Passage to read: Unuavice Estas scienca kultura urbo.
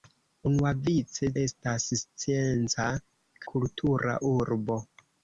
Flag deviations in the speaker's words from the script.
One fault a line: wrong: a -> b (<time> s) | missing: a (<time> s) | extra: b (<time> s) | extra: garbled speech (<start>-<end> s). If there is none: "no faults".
no faults